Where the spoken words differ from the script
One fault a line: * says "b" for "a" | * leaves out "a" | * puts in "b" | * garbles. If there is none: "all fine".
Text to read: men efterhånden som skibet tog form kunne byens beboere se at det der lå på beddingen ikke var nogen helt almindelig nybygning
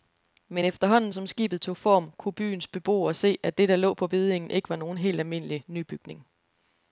all fine